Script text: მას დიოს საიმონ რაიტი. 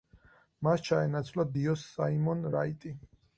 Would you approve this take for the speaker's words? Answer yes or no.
no